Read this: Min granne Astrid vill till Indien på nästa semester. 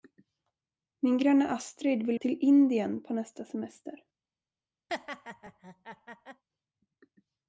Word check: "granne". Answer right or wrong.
right